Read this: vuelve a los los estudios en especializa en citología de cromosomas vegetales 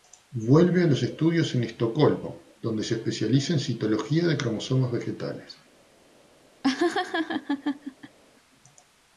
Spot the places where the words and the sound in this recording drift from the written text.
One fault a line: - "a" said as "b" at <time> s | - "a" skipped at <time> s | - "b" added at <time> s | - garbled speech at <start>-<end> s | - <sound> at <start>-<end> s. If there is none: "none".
- "los" skipped at 1.0 s
- "estocolmo donde se" added at 1.6 s
- laugh at 6.6-8.2 s